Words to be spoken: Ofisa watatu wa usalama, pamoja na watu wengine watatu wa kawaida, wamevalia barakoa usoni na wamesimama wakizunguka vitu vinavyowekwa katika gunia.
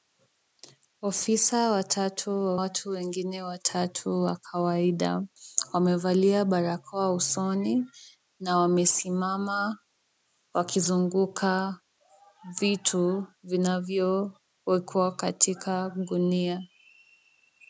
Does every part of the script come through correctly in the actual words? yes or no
no